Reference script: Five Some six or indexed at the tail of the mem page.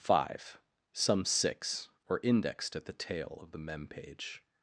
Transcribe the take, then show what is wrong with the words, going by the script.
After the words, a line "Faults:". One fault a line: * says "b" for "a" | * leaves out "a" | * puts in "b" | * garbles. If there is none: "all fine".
Five Some six or indexed at the tail of the mem page.
Faults:
all fine